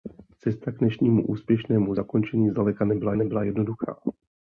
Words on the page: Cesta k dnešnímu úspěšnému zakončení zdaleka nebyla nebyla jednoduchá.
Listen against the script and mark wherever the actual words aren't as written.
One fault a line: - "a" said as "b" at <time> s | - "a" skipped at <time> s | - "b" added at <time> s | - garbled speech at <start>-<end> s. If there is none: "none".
none